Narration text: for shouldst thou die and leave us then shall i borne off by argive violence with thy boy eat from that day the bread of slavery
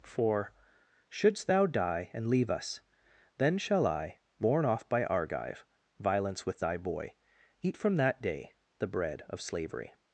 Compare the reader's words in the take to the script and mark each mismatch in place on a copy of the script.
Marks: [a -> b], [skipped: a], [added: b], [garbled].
for shouldst thou die and leave us then shall i borne off by argive violence with thy boy eat from that day the bread of slavery